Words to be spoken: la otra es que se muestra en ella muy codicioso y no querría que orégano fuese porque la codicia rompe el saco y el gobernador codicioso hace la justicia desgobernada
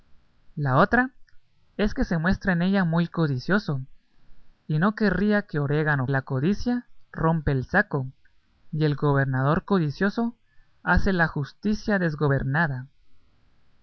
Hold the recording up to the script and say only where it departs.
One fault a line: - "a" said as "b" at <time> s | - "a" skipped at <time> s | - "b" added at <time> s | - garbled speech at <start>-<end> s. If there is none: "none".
- "fuese porque" skipped at 6.1 s